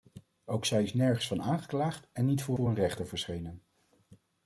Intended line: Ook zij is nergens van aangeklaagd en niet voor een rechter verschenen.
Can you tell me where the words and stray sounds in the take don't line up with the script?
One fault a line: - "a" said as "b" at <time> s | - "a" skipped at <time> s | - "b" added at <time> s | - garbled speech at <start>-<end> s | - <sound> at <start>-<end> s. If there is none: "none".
- "voor" added at 2.5 s